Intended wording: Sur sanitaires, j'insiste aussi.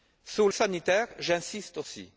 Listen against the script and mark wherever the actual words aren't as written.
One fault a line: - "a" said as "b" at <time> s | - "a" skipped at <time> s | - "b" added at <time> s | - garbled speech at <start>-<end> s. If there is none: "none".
none